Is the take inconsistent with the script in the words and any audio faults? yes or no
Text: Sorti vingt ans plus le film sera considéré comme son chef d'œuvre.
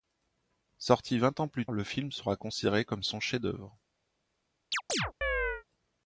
yes